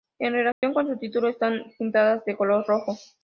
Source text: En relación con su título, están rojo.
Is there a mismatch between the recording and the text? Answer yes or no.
yes